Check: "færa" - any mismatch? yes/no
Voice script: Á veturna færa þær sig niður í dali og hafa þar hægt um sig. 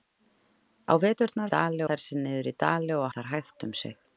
yes